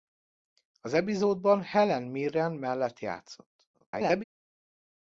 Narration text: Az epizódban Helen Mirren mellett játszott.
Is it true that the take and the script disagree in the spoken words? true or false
true